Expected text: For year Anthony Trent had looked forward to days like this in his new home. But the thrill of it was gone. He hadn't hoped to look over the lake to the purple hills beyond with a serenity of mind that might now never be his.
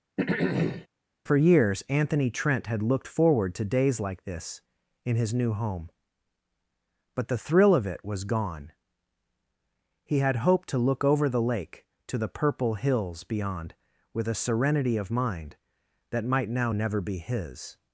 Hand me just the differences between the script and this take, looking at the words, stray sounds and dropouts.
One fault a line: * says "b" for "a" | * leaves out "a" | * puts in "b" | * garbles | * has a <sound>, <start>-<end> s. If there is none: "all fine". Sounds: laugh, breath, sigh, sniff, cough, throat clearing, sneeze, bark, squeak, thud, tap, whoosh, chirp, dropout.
* has a throat clearing, 0.2-0.9 s
* says "years" for "year"
* says "had" for "hadn't"